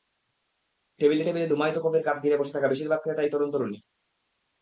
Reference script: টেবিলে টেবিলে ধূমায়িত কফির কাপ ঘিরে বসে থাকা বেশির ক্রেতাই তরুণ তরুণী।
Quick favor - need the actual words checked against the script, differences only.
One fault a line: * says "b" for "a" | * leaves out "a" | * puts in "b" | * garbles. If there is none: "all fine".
* puts in "ভাগ"